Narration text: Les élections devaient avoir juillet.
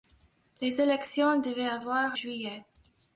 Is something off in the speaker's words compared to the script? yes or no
no